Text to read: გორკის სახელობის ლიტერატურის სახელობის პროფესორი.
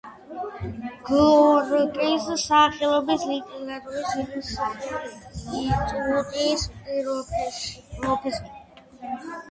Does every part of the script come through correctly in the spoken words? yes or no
no